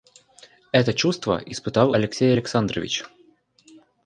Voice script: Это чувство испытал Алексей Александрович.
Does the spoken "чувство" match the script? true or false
true